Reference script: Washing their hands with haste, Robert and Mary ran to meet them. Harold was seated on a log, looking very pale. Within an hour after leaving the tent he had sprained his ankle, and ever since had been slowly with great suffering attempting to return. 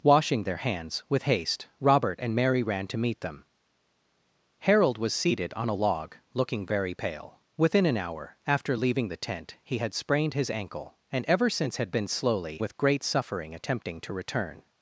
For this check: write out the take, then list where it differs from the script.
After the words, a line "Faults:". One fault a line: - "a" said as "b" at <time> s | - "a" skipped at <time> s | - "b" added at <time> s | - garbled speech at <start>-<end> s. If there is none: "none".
Washing their hands with haste, Robert and Mary ran to meet them. Harold was seated on a log, looking very pale. Within an hour after leaving the tent he had sprained his ankle, and ever since had been slowly with great suffering attempting to return.
Faults:
none